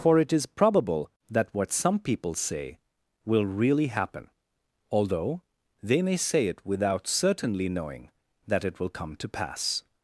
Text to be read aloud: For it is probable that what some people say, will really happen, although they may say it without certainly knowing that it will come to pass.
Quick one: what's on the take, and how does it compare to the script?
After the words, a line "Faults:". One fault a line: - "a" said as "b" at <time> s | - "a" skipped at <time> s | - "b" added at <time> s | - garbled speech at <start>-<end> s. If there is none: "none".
For it is probable that what some people say, will really happen, although they may say it without certainly knowing that it will come to pass.
Faults:
none